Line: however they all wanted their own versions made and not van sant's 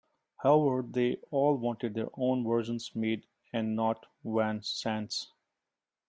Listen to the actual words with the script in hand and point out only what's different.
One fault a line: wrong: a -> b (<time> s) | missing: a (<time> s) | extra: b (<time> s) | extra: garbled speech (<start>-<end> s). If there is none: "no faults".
no faults